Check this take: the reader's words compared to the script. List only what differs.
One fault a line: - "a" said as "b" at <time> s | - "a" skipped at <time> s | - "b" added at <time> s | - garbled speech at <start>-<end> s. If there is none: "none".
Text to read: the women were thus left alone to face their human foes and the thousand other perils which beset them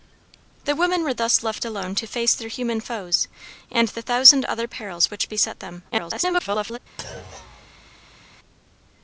- garbled speech at 5.9-6.8 s